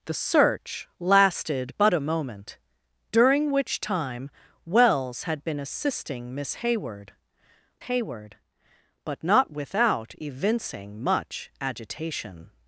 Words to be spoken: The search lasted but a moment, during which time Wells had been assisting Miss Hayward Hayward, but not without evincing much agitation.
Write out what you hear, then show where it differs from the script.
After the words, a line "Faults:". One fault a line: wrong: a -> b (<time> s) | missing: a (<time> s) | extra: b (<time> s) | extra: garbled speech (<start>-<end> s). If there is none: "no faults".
The search lasted but a moment, during which time Wells had been assisting Miss Hayward Hayward, but not without evincing much agitation.
Faults:
no faults